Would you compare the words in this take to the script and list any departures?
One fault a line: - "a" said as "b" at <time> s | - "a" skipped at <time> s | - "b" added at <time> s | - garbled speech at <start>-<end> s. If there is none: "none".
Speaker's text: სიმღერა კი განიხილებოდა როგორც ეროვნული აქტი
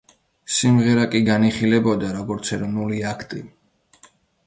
none